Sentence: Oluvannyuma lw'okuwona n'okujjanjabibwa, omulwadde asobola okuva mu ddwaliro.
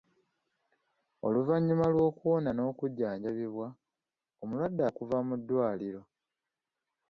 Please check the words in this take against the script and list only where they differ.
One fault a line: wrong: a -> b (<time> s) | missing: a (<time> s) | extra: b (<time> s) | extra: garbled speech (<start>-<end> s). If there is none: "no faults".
missing: asobola (4.8 s)